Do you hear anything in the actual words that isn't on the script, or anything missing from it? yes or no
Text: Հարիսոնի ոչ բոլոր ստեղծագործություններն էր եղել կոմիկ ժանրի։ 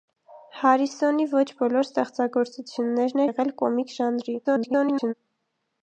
yes